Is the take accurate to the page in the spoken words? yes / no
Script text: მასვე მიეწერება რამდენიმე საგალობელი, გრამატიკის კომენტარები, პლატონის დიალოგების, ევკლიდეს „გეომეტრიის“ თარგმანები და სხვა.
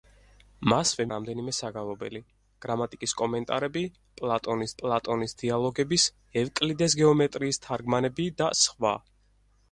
no